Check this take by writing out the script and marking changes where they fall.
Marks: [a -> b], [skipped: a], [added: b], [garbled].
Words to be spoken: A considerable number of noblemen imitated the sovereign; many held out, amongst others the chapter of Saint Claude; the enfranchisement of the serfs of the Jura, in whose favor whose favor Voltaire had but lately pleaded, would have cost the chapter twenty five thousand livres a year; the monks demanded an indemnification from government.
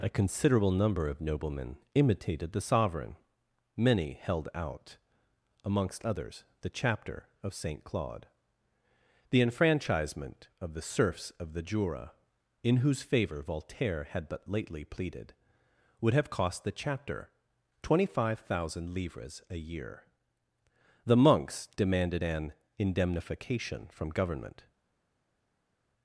A considerable number of noblemen imitated the sovereign; many held out, amongst others the chapter of Saint Claude; the enfranchisement of the serfs of the Jura, in whose favor [skipped: whose favor] Voltaire had but lately pleaded, would have cost the chapter twenty five thousand livres a year; the monks demanded an indemnification from government.